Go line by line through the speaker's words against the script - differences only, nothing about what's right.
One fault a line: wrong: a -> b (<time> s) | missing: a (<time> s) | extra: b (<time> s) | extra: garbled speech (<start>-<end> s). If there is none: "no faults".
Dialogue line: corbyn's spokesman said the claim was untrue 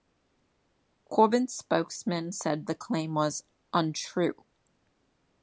no faults